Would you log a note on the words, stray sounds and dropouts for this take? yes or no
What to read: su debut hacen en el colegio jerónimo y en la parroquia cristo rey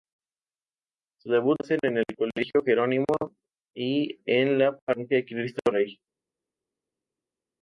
no